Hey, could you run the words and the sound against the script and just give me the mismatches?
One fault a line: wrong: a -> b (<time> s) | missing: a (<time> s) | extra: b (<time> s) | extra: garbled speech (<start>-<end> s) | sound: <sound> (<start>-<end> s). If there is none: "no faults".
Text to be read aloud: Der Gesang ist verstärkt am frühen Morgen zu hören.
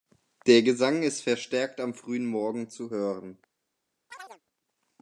sound: chirp (4.1-4.4 s)